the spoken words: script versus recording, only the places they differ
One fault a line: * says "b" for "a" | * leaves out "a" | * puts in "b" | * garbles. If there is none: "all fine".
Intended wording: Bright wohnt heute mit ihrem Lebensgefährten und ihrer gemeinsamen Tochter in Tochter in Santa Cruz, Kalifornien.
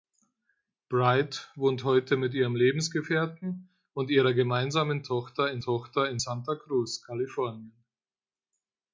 all fine